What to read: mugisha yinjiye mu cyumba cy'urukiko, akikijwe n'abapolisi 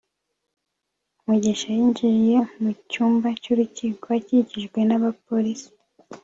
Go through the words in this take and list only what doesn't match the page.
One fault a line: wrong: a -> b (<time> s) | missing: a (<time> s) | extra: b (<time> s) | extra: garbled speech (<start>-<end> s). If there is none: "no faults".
no faults